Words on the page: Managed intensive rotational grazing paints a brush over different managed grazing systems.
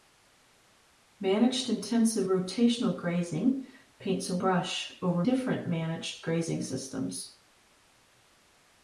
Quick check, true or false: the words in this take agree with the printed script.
true